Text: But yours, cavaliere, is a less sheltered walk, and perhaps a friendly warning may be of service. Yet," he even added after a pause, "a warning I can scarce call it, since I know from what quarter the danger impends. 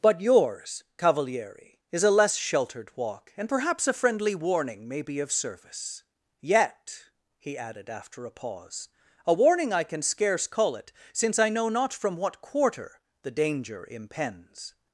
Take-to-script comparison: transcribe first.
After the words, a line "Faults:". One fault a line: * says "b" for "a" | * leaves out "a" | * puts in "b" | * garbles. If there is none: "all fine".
But yours, cavaliere, is a less sheltered walk, and perhaps a friendly warning may be of service. Yet," he added after a pause, "a warning I can scarce call it, since I know not from what quarter the danger impends.
Faults:
* leaves out "even"
* puts in "not"